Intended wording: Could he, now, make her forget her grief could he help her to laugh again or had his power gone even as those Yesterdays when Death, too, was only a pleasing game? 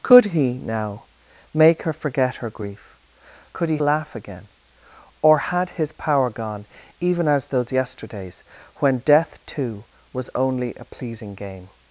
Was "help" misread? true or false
true